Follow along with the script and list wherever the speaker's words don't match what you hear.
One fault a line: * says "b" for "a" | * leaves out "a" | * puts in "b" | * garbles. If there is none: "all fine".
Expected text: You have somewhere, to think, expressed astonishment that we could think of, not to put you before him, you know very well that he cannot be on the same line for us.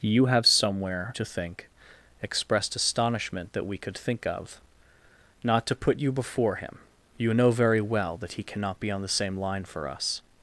all fine